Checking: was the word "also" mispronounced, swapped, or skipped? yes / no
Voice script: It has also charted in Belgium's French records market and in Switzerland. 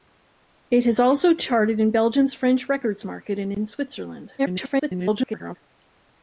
no